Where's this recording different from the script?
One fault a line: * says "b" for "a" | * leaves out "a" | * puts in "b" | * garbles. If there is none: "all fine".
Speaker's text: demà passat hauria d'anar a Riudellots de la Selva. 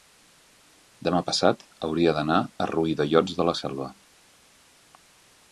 all fine